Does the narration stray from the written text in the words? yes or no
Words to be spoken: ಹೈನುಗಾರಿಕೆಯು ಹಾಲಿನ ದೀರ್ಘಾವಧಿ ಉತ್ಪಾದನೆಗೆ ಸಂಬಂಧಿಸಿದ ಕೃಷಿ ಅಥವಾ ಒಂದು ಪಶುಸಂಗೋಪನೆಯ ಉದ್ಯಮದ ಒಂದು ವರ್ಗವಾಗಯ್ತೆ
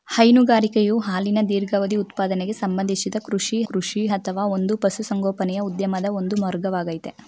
yes